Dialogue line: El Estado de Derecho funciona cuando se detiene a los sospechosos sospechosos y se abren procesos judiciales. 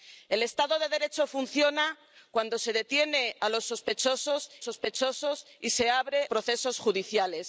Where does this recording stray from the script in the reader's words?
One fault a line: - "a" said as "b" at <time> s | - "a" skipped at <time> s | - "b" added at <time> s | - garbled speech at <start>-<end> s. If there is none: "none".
none